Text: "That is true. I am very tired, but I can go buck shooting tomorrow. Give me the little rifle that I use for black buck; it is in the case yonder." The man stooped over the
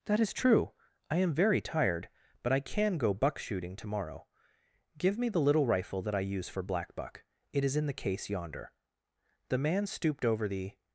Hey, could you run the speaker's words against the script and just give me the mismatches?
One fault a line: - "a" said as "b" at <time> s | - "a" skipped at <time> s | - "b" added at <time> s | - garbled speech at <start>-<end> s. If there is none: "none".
none